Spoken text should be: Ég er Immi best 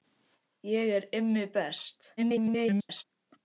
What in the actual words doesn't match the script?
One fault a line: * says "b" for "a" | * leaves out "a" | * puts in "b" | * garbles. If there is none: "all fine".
* garbles